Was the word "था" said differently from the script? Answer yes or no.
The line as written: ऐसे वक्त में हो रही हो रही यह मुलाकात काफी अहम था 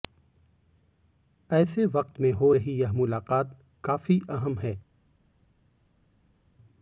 yes